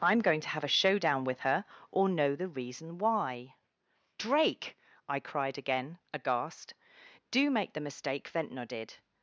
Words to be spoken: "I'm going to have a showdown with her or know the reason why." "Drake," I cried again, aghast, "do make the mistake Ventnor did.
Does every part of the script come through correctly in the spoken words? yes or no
yes